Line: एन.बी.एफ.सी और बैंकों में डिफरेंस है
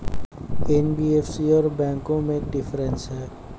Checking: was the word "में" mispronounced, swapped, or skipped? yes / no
no